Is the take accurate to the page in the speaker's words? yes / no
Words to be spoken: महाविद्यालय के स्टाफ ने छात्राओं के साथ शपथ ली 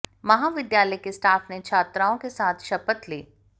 yes